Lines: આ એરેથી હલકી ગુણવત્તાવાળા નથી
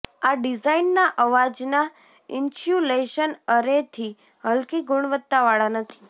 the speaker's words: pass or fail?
fail